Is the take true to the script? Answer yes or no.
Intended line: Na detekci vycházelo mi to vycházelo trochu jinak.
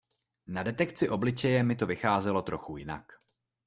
no